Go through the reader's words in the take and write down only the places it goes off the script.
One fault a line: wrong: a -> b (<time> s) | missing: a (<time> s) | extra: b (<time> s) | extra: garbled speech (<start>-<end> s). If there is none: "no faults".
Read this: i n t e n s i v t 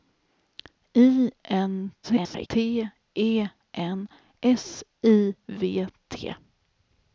extra: garbled speech (2.0-2.5 s)